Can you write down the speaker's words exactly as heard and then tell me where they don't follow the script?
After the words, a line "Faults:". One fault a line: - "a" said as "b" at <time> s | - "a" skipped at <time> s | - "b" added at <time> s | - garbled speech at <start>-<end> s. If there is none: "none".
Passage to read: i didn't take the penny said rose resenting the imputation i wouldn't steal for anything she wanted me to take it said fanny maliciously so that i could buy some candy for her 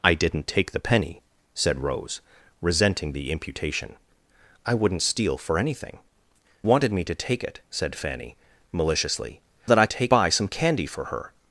i didn't take the penny said rose resenting the imputation i wouldn't steal for anything wanted me to take it said fanny maliciously that i take buy some candy for her
Faults:
- "she" skipped at 6.0 s
- "so" skipped at 9.4 s
- "could" said as "take" at 9.9 s